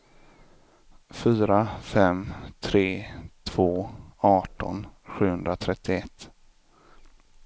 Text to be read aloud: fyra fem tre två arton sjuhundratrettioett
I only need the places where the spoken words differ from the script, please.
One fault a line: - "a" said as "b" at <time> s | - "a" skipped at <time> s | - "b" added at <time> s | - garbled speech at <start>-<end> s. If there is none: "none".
none